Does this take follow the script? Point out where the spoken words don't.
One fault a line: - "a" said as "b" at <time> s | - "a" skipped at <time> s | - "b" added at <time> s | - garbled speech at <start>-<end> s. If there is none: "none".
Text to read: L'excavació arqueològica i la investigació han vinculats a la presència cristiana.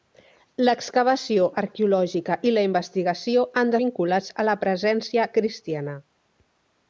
none